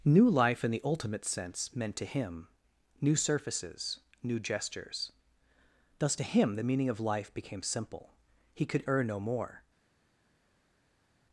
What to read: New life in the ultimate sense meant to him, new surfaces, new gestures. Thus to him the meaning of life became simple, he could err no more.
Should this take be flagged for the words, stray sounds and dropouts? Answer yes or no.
no